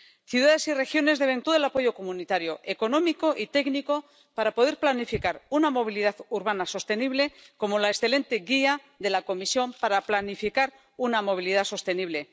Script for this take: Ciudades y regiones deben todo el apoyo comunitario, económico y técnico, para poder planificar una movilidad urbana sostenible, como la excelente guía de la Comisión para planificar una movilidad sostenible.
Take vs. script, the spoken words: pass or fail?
pass